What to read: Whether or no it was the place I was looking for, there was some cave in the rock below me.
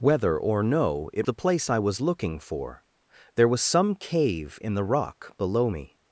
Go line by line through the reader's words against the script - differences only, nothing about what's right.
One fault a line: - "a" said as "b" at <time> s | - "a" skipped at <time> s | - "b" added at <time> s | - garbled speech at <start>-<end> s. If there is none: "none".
- "was" skipped at 1.3 s